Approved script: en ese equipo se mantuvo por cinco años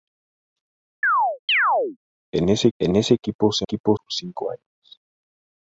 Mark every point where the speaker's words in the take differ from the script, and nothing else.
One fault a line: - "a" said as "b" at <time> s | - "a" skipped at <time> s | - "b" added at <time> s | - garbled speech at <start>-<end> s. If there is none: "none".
- "en ese" added at 2.8 s
- "mantuvo" said as "equipo" at 3.6 s